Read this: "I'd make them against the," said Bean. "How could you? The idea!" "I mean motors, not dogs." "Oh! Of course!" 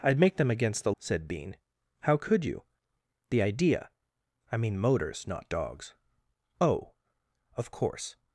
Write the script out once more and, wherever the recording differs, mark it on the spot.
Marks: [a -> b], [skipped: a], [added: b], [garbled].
"I'd make them against the," said Bean. "How could you? The idea!" "I mean motors, not dogs." "Oh! Of course!"